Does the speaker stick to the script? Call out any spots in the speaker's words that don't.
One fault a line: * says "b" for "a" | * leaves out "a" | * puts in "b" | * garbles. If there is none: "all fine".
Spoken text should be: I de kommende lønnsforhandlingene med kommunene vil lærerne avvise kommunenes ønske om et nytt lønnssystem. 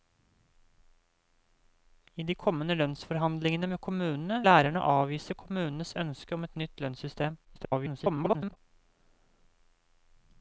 * leaves out "vil"
* garbles